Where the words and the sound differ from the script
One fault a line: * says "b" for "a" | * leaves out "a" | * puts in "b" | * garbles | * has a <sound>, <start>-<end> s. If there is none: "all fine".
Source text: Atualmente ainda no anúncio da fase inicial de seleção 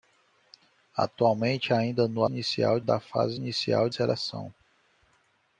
* says "inicial" for "anúncio"
* leaves out "de"